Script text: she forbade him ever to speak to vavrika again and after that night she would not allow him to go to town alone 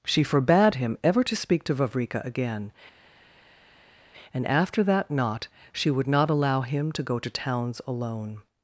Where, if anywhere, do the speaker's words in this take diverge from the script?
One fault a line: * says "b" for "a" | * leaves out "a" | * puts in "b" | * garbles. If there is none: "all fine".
* says "knot" for "night"
* says "towns" for "town"